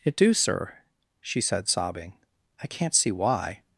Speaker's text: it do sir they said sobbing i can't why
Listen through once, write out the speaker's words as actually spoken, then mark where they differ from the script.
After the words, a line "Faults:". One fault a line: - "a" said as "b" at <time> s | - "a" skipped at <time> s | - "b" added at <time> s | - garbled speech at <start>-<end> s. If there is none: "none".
it do sir she said sobbing i can't see why
Faults:
- "they" said as "she" at 1.2 s
- "see" added at 2.9 s